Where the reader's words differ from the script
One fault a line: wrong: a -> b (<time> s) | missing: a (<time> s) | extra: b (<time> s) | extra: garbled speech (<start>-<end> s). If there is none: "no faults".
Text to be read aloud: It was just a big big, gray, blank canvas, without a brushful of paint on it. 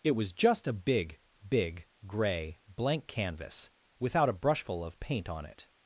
no faults